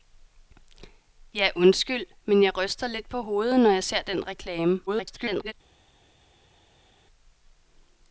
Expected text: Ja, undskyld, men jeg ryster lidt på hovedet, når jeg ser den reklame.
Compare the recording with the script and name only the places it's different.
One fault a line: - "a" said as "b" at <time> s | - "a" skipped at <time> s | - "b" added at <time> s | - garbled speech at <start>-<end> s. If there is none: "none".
- garbled speech at 4.9-5.5 s